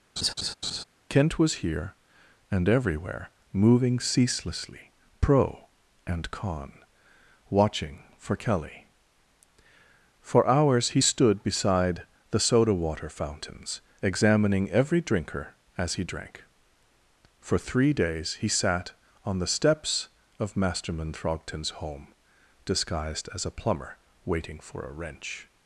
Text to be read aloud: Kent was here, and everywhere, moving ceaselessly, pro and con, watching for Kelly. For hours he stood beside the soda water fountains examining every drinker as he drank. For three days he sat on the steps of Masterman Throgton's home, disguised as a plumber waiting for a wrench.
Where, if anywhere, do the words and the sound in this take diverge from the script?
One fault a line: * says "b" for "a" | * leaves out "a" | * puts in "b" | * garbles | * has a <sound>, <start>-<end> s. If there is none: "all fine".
* has a laugh, 0.2-0.8 s